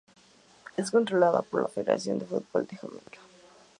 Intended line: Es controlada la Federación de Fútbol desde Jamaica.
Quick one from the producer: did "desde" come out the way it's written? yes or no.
no